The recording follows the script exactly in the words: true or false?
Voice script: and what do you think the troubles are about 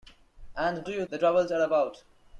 false